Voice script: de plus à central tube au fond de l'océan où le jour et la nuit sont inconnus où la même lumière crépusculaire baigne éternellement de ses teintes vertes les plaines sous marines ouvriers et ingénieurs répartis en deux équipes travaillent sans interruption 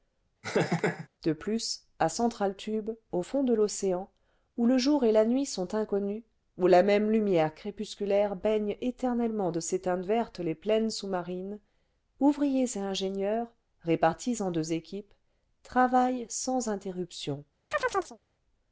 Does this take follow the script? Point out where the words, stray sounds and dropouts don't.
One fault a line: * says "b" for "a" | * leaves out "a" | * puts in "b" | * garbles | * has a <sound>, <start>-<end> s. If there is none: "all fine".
* has a laugh, 0.4-1.1 s
* has a chirp, 17.7-18.2 s